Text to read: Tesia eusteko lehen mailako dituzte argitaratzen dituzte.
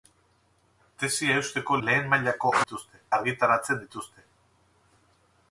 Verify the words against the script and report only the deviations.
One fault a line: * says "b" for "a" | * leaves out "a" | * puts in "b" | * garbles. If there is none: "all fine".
all fine